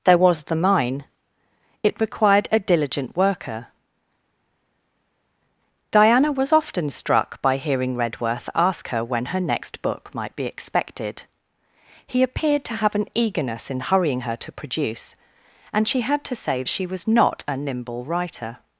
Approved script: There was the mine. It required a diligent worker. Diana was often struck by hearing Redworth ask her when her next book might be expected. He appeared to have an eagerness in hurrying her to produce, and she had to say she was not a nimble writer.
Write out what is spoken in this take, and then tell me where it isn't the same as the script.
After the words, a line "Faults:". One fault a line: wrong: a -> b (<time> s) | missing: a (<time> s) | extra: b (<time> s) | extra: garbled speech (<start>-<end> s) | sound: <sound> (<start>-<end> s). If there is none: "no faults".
There was the mine. It required a diligent worker. Diana was often struck by hearing Redworth ask her when her next book might be expected. He appeared to have an eagerness in hurrying her to produce, and she had to say she was not a nimble writer.
Faults:
no faults